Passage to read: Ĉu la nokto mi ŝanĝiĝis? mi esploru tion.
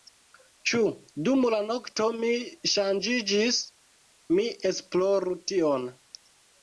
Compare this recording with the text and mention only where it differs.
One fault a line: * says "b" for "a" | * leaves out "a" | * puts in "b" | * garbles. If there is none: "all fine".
* puts in "dum"